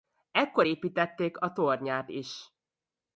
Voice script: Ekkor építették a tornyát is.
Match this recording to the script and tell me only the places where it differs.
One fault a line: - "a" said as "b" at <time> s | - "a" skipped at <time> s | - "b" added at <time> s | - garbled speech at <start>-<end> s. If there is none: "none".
none